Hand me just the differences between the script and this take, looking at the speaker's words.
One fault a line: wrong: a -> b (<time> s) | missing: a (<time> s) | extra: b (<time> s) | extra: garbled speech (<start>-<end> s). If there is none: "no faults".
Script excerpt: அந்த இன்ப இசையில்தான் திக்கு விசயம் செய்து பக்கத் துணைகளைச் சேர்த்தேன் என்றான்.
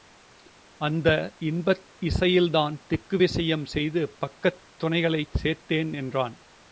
no faults